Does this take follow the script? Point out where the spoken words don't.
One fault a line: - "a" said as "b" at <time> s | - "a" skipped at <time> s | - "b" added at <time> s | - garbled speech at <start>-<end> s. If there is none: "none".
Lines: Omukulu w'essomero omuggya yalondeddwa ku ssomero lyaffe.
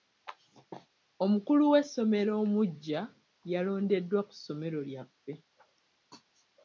none